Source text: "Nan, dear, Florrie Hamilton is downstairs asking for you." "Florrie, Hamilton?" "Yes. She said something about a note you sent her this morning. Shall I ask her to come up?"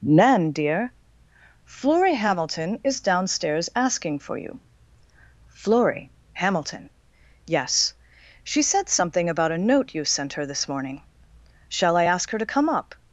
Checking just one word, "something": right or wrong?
right